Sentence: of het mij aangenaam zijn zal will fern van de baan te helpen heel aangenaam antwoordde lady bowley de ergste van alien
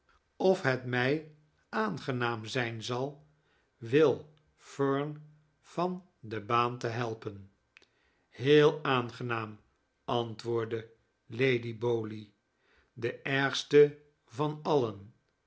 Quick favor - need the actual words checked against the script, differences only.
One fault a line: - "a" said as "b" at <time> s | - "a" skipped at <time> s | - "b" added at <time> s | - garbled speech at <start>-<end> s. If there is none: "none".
none